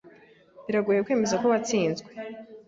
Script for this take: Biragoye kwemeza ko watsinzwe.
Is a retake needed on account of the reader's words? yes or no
no